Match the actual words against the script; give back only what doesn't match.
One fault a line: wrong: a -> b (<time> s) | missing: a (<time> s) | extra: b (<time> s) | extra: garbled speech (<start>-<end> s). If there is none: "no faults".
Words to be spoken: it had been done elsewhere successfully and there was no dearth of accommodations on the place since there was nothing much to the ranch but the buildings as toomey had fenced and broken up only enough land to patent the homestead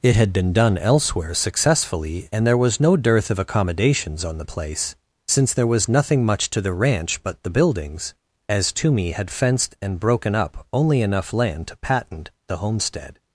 no faults